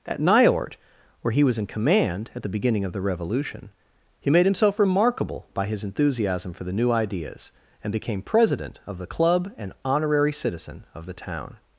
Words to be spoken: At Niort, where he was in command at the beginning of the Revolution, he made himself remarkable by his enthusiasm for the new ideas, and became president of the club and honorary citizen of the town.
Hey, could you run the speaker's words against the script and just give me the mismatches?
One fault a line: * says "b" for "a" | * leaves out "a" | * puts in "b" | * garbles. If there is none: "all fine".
all fine